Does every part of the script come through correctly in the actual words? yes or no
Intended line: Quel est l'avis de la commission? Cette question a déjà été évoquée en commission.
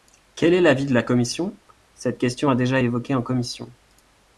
no